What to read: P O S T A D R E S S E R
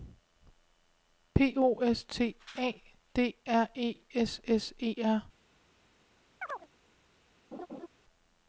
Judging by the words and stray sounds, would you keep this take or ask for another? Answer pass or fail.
fail